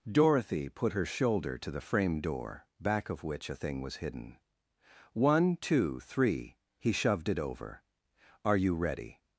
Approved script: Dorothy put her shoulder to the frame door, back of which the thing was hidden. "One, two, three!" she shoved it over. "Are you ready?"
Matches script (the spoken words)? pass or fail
fail